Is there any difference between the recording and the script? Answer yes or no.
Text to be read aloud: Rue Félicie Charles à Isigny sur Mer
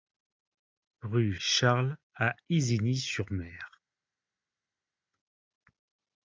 yes